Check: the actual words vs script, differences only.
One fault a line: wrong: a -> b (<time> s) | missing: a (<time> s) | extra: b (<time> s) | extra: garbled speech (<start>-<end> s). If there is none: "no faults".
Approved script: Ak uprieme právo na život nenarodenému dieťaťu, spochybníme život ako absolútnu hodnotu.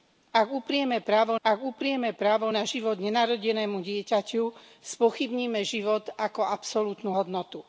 extra: ak uprieme právo (1.4 s)